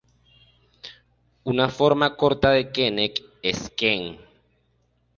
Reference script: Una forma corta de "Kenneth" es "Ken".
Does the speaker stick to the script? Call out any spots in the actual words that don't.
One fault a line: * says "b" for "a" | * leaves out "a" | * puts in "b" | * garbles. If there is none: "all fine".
all fine